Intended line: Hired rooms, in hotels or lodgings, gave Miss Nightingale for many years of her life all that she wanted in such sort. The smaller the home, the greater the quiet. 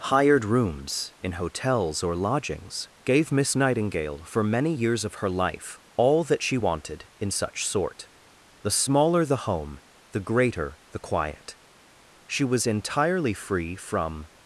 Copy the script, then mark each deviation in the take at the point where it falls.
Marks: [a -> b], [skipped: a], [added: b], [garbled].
Hired rooms, in hotels or lodgings, gave Miss Nightingale for many years of her life all that she wanted in such sort. The smaller the home, the greater the quiet. [added: She was entirely free from]